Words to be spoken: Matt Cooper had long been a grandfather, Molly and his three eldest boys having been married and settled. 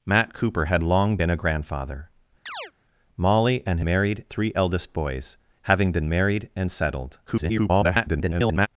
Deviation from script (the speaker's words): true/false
true